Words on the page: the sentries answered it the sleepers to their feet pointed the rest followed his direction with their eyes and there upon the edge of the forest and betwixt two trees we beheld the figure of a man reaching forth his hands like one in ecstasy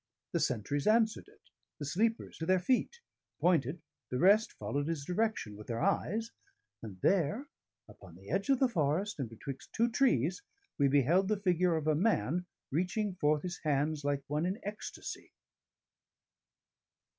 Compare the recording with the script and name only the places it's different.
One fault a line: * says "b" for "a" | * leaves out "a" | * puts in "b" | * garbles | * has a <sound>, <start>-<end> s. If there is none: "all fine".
all fine